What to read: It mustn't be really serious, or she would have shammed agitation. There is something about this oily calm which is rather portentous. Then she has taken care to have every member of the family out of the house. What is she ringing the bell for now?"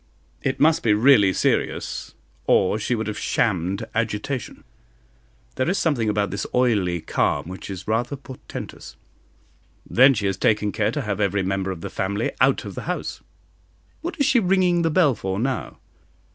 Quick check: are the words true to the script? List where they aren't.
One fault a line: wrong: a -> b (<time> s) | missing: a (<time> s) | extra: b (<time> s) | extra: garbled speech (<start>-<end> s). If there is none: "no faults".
wrong: mustn't -> must (0.6 s)